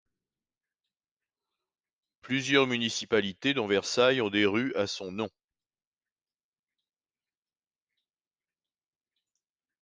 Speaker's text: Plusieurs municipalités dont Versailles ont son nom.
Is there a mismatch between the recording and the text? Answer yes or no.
yes